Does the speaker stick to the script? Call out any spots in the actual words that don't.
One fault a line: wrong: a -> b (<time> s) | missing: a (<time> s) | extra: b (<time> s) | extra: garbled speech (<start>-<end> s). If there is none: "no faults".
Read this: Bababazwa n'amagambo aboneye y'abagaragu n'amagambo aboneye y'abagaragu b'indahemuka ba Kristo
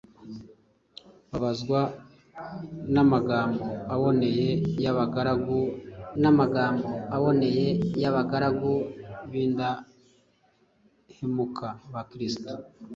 no faults